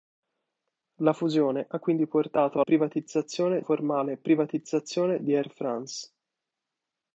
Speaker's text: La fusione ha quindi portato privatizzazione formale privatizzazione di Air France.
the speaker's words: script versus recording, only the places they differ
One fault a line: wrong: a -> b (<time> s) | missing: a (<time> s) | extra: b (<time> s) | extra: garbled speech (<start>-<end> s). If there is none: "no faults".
no faults